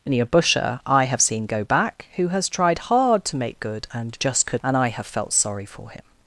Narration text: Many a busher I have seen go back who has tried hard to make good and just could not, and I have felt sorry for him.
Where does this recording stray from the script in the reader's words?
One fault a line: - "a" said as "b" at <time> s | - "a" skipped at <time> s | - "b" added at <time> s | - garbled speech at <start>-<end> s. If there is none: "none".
- "not" skipped at 4.6 s